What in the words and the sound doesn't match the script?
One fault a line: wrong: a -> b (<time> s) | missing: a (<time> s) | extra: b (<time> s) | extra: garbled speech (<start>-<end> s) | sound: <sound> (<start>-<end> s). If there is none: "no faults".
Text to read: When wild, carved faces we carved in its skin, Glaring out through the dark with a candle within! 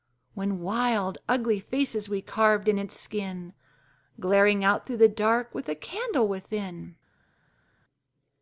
wrong: carved -> ugly (1.3 s)